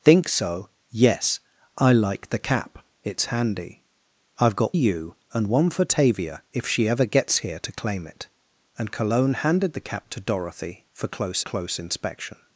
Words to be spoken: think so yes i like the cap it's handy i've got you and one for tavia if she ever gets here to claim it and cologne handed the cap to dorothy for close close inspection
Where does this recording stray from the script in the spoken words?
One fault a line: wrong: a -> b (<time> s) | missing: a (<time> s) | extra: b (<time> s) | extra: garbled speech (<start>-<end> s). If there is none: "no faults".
no faults